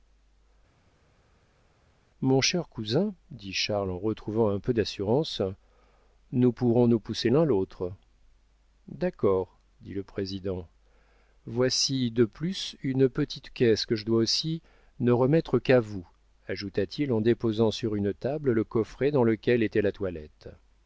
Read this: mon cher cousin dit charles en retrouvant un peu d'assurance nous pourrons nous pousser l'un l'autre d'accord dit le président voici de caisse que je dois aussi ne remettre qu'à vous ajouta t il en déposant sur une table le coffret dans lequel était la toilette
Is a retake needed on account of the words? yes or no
yes